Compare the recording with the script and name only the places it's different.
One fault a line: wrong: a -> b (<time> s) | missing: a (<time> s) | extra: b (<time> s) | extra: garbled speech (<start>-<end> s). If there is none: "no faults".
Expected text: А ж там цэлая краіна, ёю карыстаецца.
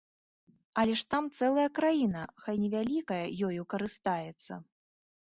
wrong: А -> Але (0.8 s)
extra: хай невялікая (2.4 s)